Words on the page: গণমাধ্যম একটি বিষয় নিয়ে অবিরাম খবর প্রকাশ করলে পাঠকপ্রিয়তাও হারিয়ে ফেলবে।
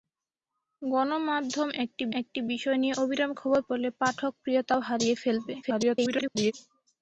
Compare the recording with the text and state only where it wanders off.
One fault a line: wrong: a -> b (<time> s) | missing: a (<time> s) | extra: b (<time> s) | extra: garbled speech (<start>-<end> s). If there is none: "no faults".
extra: একটি (2.2 s)
missing: প্রকাশ (3.6 s)
extra: garbled speech (5.6-6.5 s)